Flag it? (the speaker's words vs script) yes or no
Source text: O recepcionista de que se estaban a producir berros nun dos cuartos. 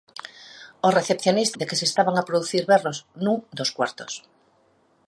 no